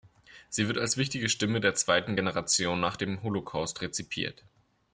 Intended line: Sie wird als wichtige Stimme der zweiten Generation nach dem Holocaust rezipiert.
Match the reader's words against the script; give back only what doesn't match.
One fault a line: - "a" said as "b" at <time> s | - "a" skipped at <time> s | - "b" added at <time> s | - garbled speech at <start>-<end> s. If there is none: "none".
none